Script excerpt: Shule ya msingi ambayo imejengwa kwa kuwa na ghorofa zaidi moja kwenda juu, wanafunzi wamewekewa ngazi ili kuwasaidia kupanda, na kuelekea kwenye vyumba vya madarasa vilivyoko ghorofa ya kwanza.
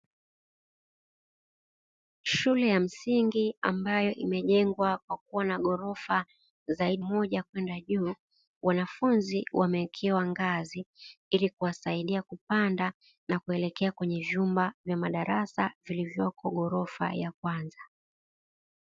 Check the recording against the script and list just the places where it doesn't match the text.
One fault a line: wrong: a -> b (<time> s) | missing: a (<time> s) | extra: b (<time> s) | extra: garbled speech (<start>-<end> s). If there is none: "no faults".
no faults